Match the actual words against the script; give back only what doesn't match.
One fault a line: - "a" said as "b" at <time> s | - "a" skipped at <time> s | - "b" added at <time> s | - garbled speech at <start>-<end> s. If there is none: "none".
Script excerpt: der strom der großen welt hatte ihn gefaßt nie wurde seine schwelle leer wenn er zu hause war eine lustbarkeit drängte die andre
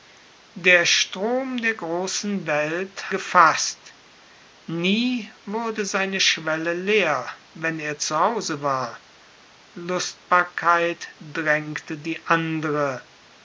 - "hatte ihn" skipped at 3.1 s
- "eine" skipped at 9.0 s